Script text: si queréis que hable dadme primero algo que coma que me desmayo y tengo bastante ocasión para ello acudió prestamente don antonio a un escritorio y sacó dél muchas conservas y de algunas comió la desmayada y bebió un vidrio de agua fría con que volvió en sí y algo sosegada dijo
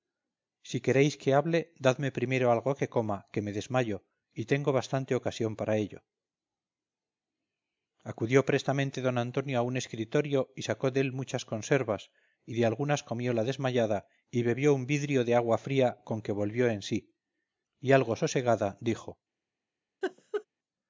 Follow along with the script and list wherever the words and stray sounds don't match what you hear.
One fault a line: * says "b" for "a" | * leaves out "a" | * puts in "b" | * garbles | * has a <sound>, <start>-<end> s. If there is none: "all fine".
* has a laugh, 20.0-20.5 s